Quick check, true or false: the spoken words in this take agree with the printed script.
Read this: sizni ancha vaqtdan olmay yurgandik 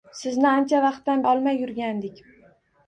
true